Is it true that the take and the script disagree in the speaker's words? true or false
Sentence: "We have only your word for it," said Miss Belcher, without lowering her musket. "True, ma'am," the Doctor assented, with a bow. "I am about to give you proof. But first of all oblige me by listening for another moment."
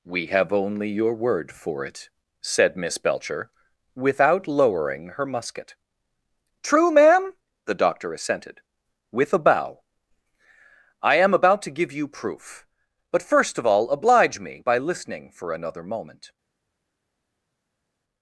false